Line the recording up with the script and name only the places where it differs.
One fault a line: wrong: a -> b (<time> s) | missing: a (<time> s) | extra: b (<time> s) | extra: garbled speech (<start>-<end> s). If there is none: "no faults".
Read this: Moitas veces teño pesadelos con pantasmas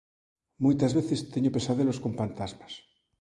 no faults